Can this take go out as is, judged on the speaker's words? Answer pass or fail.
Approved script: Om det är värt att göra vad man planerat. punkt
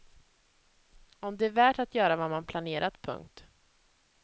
pass